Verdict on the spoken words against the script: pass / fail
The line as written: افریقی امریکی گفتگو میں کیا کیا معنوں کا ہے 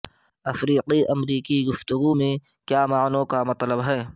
fail